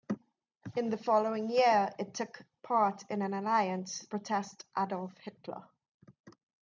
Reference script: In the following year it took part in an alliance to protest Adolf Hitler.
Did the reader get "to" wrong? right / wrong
wrong